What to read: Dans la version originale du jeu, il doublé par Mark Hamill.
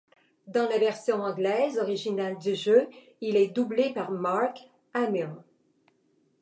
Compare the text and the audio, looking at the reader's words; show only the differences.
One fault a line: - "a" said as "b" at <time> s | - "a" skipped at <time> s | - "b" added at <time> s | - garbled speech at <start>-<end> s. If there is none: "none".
- "anglaise" added at 1.2 s
- "est" added at 3.3 s